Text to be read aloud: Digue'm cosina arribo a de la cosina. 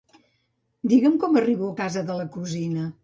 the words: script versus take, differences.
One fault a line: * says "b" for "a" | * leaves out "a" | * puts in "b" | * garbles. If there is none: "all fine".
* says "com" for "cosina"
* puts in "casa"